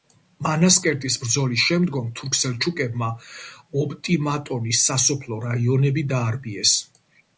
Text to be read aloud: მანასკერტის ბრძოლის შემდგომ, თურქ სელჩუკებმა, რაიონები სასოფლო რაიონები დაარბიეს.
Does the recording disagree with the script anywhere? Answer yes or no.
yes